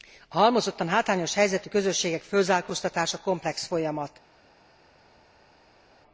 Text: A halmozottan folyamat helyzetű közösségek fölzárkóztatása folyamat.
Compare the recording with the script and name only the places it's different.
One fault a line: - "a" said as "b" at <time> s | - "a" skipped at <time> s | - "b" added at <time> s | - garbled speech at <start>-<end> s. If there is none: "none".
- "folyamat" said as "hátrányos" at 0.9 s
- "komplex" added at 3.2 s